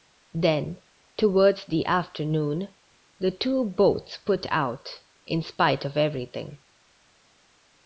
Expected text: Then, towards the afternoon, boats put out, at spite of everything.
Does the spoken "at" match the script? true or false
false